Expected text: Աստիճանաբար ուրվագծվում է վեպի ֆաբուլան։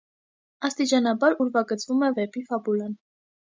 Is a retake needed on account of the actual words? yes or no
no